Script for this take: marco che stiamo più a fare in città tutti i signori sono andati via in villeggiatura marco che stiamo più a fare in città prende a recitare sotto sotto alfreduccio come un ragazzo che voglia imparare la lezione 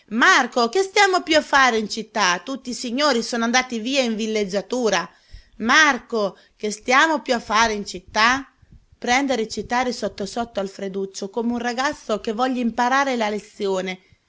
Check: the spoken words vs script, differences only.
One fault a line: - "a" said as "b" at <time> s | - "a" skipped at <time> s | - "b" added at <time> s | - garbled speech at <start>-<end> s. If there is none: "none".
none